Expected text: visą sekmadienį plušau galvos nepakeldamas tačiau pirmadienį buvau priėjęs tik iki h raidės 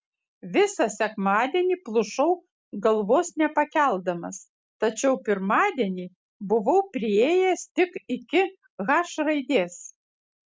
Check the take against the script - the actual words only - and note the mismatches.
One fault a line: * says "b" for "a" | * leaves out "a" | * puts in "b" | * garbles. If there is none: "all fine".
all fine